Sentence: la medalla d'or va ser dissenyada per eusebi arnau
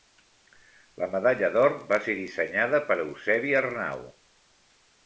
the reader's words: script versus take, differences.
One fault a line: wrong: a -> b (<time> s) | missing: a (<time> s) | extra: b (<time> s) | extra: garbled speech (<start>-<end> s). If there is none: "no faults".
no faults